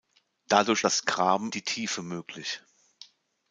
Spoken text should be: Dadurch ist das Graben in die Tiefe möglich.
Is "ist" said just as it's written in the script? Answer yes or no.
no